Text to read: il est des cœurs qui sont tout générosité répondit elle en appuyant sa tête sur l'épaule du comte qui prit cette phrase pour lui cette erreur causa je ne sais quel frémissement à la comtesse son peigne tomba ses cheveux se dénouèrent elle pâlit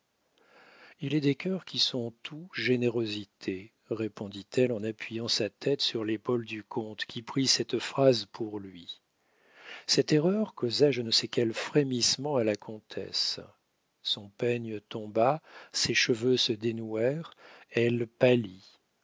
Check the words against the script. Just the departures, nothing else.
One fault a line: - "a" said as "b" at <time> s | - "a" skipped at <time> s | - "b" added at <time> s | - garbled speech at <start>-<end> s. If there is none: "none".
none